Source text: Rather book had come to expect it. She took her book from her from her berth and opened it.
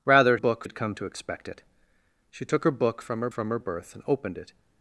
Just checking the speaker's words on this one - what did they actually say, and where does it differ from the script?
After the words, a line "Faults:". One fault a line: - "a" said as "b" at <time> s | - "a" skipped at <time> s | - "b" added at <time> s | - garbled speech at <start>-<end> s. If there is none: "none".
Rather book had come to expect it. She took her book from her from her berth and opened it.
Faults:
none